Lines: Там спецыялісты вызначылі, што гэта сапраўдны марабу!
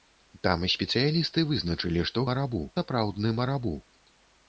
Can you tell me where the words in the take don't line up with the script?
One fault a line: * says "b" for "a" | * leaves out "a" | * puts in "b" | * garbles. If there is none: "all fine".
* says "марабу" for "гэта"